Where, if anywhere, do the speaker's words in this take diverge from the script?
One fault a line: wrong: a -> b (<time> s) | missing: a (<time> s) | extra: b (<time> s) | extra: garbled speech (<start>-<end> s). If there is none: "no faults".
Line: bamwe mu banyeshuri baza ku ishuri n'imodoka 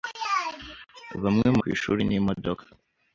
missing: banyeshuri baza (1.6 s)